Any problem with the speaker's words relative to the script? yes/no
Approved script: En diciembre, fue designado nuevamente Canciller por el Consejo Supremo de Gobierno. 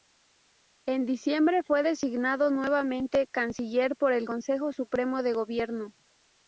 no